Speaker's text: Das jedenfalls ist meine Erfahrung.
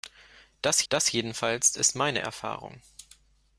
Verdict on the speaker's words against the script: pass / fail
fail